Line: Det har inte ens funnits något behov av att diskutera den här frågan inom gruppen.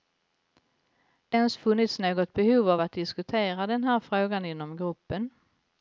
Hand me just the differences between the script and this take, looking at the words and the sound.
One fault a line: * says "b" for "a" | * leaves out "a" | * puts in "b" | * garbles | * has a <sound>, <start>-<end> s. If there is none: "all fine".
* leaves out "har inte"